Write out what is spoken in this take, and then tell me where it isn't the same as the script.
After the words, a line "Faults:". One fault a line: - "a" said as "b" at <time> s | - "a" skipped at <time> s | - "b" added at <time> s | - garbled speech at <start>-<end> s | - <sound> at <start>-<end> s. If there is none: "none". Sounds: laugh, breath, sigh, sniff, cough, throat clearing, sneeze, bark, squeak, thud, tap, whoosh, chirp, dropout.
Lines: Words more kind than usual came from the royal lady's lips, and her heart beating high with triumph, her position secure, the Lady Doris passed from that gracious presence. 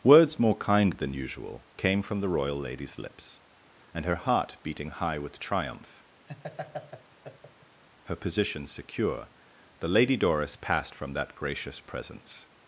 Words more kind than usual came from the royal lady's lips, and her heart beating high with triumph, her position secure, the Lady Doris passed from that gracious presence.
Faults:
- laugh at 6.3-7.8 s